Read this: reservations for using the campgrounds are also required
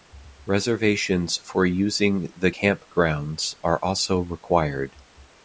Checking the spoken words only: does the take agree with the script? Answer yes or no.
yes